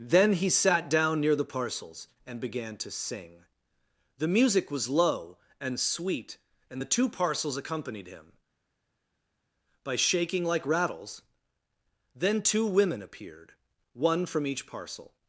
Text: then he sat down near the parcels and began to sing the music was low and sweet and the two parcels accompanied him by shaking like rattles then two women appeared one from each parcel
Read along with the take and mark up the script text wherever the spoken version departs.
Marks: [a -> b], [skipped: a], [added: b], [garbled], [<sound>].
then he sat down near the parcels and began to sing the music was low and sweet and the two parcels accompanied him by shaking like rattles then two women appeared one from each parcel